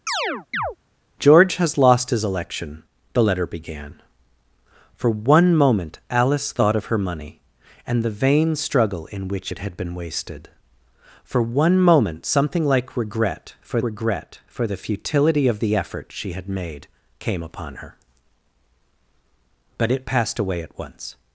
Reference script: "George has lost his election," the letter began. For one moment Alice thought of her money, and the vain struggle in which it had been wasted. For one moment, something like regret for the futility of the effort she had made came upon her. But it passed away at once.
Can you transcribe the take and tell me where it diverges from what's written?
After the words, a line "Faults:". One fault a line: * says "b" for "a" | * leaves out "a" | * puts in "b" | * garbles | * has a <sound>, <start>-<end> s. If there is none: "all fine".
"George has lost his election," the letter began. For one moment Alice thought of her money, and the vain struggle in which it had been wasted. For one moment, something like regret for regret for the futility of the effort she had made came upon her. But it passed away at once.
Faults:
* has a chirp, 0.1-0.8 s
* puts in "regret for"